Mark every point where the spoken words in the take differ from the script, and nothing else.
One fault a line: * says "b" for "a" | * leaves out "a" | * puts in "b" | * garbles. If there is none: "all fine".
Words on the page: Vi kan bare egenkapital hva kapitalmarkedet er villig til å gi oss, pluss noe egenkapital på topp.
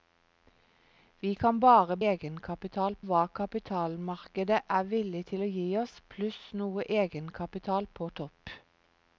all fine